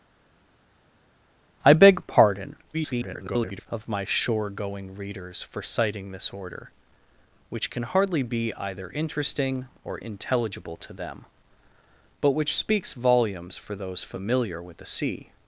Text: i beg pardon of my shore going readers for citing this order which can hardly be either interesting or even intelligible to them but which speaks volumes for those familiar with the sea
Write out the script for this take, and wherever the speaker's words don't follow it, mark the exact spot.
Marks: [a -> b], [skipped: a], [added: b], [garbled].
i beg pardon [garbled] of my shore going readers for citing this order which can hardly be either interesting or [skipped: even] intelligible to them but which speaks volumes for those familiar with the sea